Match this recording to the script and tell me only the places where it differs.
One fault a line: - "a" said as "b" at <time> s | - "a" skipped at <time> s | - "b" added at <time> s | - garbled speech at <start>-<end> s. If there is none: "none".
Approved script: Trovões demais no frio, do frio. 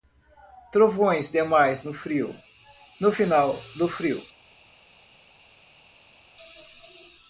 - "no final" added at 3.0 s